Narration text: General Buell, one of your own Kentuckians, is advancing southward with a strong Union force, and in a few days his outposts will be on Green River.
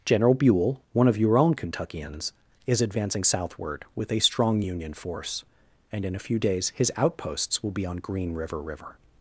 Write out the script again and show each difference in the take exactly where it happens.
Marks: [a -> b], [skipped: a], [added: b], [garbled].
General Buell, one of your own Kentuckians, is advancing southward with a strong Union force, and in a few days his outposts will be on Green River. [added: River]